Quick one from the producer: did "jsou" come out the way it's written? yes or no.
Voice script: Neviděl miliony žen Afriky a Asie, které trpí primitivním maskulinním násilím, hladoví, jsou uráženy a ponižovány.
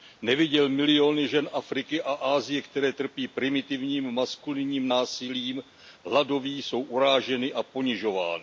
yes